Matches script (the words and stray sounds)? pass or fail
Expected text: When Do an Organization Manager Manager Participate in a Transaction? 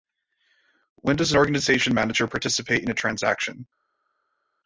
fail